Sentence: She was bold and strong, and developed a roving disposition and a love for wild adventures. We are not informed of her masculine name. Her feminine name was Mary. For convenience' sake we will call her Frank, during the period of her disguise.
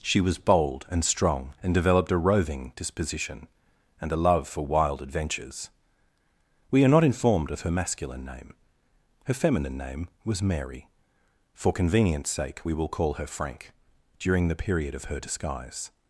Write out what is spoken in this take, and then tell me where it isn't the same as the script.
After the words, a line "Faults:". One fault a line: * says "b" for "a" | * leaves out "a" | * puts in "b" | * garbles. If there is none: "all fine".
She was bold and strong, and developed a roving disposition and a love for wild adventures. We are not informed of her masculine name. Her feminine name was Mary. For convenience' sake we will call her Frank, during the period of her disguise.
Faults:
all fine